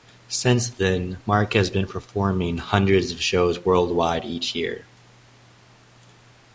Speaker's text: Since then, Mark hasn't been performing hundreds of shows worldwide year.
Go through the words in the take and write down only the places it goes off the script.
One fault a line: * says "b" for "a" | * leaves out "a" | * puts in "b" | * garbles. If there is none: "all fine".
* says "has" for "hasn't"
* puts in "each"